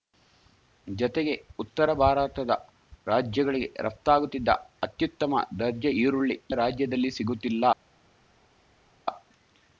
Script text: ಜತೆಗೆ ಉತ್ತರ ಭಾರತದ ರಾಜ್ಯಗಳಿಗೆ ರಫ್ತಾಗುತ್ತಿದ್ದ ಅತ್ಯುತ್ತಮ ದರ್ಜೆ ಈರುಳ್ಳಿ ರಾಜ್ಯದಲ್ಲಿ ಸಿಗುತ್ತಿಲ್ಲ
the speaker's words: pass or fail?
pass